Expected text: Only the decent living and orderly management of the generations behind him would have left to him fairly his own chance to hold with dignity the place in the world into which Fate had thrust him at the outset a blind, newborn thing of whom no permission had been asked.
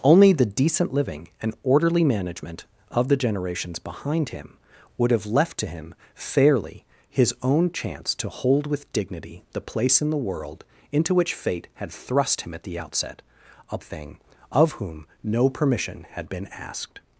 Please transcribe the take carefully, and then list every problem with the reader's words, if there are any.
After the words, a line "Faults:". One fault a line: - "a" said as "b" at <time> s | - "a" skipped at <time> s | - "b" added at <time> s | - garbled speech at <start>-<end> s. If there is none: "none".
Only the decent living and orderly management of the generations behind him would have left to him fairly his own chance to hold with dignity the place in the world into which Fate had thrust him at the outset a thing of whom no permission had been asked.
Faults:
- "blind newborn" skipped at 13.8 s